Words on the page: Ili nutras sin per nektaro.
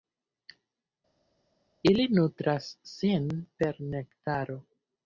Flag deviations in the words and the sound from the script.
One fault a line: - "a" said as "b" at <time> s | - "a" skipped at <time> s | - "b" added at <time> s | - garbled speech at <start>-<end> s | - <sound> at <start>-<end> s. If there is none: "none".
none